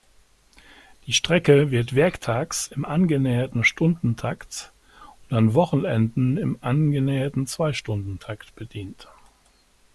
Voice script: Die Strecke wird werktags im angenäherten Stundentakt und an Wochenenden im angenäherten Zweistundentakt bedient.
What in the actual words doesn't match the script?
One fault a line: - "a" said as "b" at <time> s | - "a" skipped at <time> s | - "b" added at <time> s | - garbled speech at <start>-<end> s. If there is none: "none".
none